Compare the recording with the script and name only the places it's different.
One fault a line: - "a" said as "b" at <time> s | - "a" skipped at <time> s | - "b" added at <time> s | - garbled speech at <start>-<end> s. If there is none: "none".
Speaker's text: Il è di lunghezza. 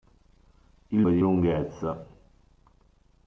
none